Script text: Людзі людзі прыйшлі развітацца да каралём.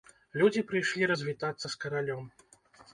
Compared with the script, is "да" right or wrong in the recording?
wrong